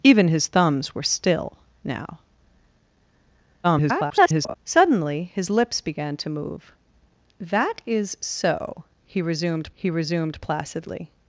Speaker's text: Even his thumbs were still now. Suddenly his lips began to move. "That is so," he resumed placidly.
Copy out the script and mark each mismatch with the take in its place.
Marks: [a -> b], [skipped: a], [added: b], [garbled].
Even his thumbs were still now. [garbled] Suddenly his lips began to move. "That is so," he resumed [added: he resumed] placidly.